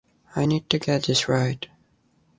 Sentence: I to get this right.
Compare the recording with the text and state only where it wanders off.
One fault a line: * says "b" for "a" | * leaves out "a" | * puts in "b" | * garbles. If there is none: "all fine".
* puts in "need"